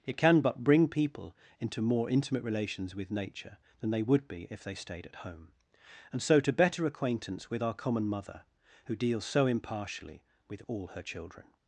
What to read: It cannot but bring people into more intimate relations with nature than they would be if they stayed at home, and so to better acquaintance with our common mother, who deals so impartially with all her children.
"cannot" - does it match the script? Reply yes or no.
no